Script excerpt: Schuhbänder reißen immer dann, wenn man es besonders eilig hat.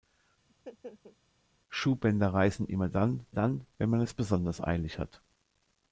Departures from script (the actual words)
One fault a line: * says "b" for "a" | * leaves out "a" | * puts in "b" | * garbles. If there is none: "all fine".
* puts in "dann"